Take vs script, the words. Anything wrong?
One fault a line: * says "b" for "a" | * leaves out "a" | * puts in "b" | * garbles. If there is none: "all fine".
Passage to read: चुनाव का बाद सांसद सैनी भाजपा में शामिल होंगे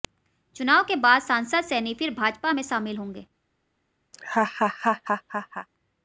* says "के" for "का"
* puts in "फिर"